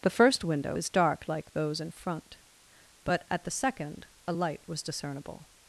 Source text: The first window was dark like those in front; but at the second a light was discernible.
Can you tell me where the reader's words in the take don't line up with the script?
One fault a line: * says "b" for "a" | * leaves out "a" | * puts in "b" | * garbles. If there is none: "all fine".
* says "is" for "was"